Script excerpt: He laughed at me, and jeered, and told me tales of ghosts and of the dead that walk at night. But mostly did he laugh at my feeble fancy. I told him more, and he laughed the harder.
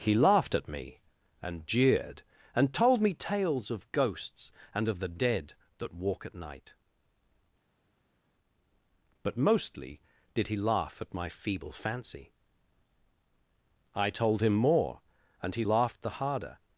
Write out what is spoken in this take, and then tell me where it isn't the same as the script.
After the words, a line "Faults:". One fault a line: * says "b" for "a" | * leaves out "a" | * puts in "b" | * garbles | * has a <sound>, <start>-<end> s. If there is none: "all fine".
He laughed at me, and jeered, and told me tales of ghosts and of the dead that walk at night. But mostly did he laugh at my feeble fancy. I told him more, and he laughed the harder.
Faults:
all fine